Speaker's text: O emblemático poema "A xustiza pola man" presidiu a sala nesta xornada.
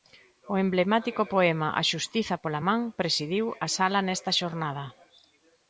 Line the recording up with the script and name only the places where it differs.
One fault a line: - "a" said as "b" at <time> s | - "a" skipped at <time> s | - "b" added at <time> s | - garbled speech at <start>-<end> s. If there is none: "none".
none